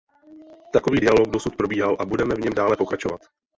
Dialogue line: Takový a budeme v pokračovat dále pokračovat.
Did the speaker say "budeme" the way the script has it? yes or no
yes